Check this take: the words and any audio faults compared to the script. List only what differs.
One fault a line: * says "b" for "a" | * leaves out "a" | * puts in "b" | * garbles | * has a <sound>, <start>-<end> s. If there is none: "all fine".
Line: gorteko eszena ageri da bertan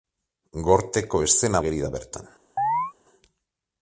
* has a chirp, 2.6-2.9 s